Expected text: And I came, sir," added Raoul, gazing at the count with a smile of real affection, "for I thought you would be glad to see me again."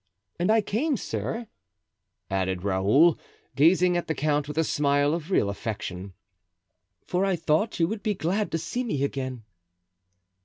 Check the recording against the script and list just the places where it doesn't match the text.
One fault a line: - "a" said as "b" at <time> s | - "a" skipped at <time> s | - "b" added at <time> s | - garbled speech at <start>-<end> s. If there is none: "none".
none